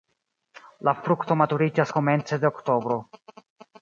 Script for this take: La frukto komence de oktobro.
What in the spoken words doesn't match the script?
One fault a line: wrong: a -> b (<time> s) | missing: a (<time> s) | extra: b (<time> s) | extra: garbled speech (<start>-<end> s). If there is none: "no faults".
extra: maturiĝas (1.4 s)